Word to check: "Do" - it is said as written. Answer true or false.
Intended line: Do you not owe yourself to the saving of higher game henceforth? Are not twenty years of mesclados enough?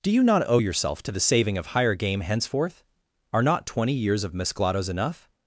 true